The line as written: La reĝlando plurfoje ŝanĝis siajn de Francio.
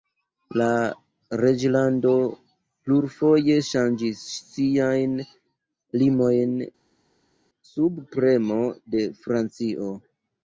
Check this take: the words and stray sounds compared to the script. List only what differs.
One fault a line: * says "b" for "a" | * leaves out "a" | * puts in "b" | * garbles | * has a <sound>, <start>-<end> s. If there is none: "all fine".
* puts in "limojn sub premo"